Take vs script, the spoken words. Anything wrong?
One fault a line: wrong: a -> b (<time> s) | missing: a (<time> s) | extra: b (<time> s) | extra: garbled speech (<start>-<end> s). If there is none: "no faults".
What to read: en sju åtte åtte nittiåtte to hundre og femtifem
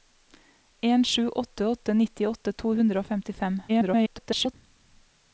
extra: garbled speech (3.7-4.5 s)